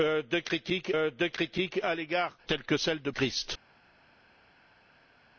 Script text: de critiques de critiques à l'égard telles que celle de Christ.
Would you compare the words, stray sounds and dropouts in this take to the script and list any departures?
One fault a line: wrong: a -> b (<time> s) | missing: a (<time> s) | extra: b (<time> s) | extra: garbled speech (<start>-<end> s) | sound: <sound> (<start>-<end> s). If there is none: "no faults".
no faults